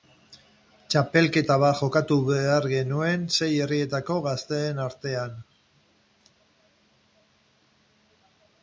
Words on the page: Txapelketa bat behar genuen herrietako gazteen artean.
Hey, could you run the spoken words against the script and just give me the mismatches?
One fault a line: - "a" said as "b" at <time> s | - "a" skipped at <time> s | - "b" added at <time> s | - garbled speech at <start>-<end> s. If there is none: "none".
- "jokatu" added at 1.8 s
- "sei" added at 3.4 s